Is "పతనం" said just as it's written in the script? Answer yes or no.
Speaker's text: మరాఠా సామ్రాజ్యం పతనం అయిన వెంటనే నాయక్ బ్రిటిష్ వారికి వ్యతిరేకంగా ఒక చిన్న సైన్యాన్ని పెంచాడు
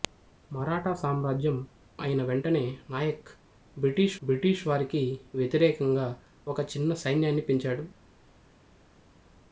no